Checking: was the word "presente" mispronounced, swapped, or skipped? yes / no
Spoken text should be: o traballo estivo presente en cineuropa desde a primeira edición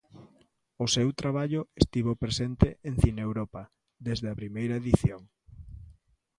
no